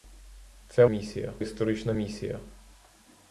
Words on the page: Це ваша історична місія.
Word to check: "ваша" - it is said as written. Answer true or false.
false